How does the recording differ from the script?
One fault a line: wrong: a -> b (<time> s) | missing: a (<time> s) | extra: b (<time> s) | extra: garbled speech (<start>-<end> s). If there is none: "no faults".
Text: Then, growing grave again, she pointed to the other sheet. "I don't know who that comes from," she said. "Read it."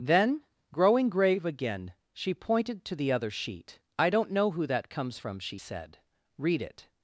no faults